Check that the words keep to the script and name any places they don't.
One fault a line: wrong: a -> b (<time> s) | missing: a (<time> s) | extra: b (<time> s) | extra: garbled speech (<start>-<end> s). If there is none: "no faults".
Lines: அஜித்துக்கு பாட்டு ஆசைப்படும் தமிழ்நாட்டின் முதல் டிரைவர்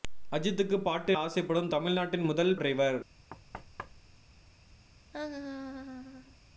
no faults